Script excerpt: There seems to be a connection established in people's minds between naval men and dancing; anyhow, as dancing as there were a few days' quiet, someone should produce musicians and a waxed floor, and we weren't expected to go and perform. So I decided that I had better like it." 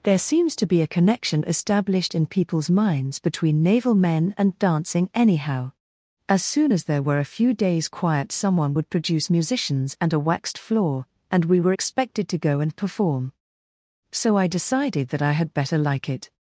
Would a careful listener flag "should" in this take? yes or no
yes